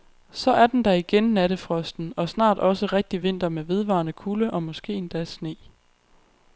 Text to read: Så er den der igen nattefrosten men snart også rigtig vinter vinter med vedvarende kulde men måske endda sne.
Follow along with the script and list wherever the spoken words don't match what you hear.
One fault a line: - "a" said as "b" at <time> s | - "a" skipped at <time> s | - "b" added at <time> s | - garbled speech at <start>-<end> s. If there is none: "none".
- "men" said as "og" at 2.2 s
- "vinter" skipped at 3.5 s
- "men" said as "og" at 4.5 s